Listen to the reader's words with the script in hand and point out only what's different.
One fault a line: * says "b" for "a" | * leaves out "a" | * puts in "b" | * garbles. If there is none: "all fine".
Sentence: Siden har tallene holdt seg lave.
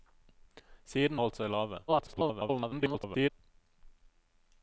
* leaves out "har tallene"
* garbles